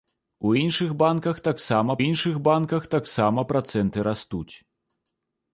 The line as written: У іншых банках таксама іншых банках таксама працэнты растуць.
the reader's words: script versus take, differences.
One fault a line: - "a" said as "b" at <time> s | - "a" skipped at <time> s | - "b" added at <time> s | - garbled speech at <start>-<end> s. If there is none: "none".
none